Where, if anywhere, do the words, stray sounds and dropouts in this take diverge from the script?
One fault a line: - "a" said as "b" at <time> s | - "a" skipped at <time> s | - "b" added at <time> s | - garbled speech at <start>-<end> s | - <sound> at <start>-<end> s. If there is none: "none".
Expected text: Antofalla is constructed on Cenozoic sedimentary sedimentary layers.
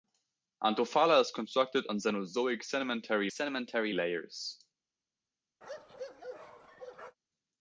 - bark at 5.6-7.2 s